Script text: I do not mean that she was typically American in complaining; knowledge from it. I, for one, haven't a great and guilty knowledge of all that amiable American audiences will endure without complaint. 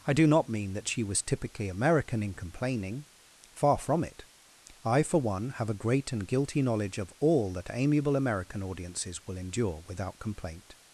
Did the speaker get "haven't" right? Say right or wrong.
wrong